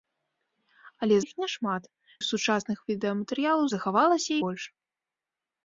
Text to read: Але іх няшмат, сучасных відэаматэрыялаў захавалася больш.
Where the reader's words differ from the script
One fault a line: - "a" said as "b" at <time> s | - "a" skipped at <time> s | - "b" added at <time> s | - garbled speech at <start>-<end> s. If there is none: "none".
none